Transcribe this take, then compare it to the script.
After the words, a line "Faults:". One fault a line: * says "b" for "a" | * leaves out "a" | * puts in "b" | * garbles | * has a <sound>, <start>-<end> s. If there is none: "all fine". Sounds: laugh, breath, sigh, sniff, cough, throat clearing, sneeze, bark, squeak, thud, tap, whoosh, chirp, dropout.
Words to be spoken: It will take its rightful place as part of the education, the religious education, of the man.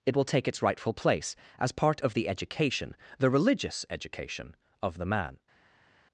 It will take its rightful place as part of the education, the religious education, of the man.
Faults:
all fine